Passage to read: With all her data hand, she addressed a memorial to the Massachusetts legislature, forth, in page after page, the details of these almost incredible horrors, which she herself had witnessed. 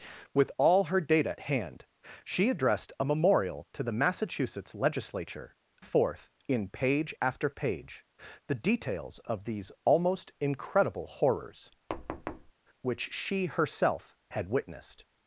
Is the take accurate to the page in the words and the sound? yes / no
no